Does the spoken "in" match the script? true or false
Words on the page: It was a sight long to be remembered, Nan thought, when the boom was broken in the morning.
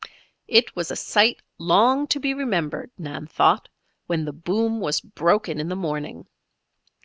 true